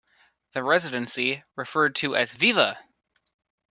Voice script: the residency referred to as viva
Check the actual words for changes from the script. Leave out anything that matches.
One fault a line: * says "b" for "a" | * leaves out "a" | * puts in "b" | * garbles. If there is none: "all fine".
all fine